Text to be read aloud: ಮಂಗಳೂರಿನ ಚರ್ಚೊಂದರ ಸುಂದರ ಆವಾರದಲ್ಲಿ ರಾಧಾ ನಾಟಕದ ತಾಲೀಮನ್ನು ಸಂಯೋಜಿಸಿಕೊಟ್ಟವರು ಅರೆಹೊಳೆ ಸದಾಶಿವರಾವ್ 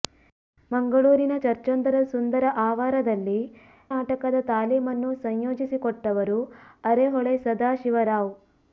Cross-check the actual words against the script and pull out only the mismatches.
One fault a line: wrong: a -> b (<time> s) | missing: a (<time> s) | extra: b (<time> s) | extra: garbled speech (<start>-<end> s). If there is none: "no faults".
missing: ರಾಧಾ (3.4 s)